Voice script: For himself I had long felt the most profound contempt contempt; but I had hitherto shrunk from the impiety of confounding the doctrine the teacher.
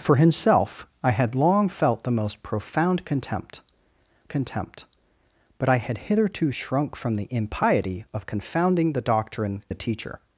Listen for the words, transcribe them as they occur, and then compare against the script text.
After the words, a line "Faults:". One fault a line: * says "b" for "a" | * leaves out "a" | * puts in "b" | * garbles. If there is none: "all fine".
For himself I had long felt the most profound contempt contempt; but I had hitherto shrunk from the impiety of confounding the doctrine the teacher.
Faults:
all fine